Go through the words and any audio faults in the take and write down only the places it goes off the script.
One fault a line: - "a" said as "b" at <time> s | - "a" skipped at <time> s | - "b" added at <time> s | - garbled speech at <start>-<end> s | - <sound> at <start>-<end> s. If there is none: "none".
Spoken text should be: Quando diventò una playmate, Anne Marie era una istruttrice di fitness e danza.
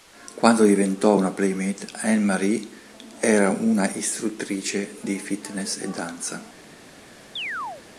- chirp at 7.4-7.8 s